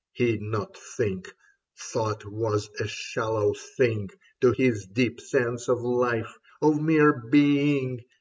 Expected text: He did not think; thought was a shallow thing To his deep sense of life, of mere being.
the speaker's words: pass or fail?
fail